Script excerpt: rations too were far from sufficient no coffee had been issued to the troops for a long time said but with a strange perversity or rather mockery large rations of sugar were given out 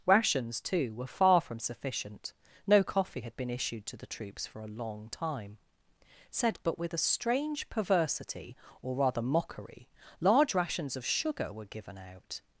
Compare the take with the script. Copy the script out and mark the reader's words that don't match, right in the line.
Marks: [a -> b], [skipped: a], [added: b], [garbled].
rations too were far from sufficient no coffee had been issued to the troops for a long time said but with a strange perversity or rather mockery large rations of sugar were given out